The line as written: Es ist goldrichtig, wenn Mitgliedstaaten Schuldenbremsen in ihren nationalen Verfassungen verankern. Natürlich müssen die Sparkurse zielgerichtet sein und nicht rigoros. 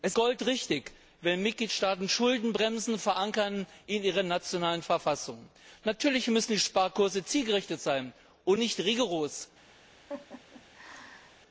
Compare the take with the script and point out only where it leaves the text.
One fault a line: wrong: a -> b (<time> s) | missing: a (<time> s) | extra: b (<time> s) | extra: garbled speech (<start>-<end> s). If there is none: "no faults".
missing: ist (0.2 s)